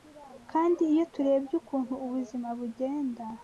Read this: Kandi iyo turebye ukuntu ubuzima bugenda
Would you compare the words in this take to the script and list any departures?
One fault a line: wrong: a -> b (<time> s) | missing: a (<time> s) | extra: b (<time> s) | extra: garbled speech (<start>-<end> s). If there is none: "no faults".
no faults